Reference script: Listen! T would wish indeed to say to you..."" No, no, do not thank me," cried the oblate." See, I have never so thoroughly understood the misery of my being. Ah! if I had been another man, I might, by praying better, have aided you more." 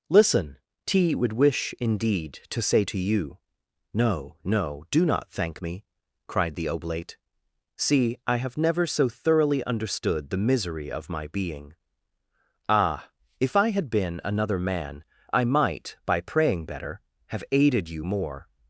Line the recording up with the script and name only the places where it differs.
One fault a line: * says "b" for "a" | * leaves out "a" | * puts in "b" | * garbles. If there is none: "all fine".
all fine